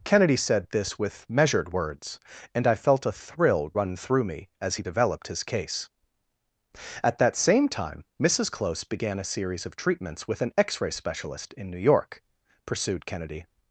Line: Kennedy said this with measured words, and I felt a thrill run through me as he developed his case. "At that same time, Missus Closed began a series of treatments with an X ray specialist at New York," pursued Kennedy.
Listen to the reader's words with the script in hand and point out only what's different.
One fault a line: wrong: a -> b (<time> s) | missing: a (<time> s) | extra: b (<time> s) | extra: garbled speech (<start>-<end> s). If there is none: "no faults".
wrong: Closed -> Close (8.5 s)
wrong: at -> in (11.5 s)